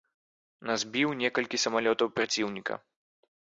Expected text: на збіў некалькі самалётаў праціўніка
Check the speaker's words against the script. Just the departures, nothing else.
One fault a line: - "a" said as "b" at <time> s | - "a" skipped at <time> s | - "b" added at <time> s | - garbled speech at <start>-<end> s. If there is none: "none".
none